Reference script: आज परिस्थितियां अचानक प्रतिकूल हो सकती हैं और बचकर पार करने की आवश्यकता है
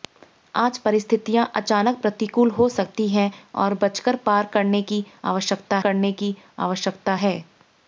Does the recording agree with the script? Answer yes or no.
no